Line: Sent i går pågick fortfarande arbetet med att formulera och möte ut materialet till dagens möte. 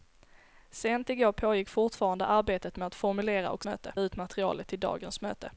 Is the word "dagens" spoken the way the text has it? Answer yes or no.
yes